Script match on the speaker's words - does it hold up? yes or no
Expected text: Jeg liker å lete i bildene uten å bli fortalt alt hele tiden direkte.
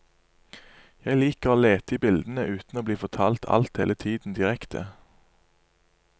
yes